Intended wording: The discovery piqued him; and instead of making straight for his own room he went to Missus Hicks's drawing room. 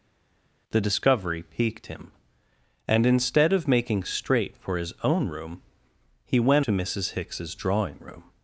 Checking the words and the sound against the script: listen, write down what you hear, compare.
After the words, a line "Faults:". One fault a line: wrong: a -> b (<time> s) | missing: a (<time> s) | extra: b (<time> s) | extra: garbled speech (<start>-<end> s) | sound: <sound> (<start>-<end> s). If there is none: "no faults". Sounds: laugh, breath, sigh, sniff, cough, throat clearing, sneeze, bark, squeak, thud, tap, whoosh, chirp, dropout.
The discovery piqued him; and instead of making straight for his own room he went to Missus Hicks's drawing room.
Faults:
no faults